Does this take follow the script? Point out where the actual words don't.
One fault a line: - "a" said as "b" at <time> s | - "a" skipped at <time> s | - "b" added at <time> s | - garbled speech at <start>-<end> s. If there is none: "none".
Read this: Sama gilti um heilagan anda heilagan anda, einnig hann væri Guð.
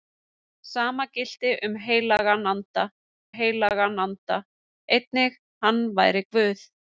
none